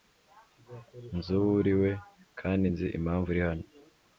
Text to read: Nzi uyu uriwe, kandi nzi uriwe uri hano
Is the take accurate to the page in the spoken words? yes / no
no